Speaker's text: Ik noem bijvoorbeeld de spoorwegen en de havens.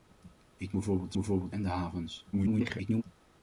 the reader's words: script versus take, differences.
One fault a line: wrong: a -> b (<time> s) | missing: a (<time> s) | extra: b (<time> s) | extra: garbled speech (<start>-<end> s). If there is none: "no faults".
missing: noem (0.8 s)
wrong: spoorwegen -> bijvoorbeeld (1.1 s)
extra: garbled speech (2.3-3.0 s)